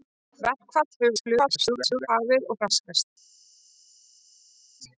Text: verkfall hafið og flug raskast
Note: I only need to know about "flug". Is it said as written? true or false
false